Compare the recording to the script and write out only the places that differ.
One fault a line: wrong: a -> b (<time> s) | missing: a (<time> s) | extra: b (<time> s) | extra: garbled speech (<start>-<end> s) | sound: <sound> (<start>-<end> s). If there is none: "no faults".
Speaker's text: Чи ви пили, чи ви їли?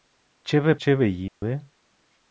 missing: пили (0.8 s)
sound: dropout (1.3-1.4 s)